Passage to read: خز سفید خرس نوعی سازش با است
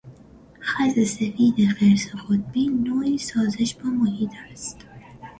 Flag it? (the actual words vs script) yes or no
yes